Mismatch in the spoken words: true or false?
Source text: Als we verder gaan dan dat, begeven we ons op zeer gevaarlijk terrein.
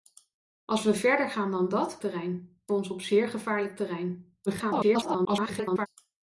true